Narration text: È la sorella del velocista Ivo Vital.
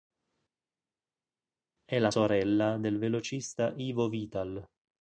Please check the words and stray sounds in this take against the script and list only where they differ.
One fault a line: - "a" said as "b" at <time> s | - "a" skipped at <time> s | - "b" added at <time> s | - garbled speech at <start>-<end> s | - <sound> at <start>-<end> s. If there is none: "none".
none